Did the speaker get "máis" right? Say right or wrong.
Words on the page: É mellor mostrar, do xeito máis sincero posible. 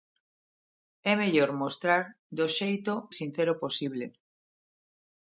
wrong